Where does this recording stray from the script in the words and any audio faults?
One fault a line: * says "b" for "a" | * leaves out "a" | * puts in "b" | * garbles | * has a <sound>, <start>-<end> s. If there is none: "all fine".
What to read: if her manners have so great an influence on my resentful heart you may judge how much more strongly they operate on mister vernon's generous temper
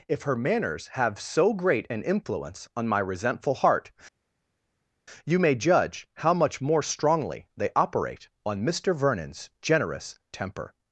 all fine